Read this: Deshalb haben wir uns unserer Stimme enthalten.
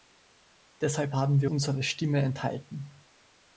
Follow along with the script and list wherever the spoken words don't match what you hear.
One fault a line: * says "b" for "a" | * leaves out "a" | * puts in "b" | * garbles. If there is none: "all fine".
* leaves out "uns"